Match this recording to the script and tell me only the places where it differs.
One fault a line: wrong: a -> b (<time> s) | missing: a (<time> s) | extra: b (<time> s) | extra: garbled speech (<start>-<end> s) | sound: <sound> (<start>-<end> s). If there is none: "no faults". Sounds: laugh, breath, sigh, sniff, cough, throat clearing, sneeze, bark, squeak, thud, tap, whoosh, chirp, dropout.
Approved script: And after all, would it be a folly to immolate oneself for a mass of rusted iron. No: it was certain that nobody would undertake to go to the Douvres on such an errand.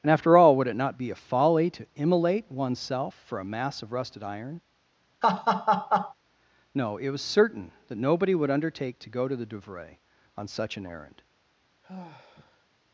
extra: not (0.8 s)
sound: laugh (5.2-6.1 s)
sound: sigh (11.8-12.6 s)